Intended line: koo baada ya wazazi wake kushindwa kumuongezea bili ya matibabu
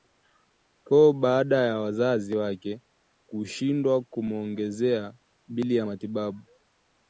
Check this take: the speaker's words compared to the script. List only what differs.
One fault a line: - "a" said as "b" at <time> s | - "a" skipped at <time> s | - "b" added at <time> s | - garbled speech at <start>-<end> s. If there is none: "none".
none